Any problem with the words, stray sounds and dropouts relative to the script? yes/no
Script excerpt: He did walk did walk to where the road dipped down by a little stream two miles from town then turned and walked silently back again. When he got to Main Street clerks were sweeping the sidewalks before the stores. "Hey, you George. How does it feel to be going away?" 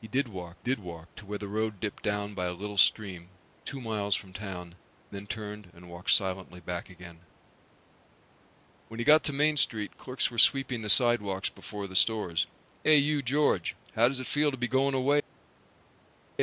no